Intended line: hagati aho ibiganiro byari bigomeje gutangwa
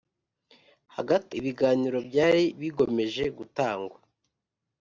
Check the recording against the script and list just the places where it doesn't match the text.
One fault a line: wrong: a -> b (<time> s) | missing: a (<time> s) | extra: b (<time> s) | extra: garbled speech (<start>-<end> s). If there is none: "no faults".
missing: aho (1.3 s)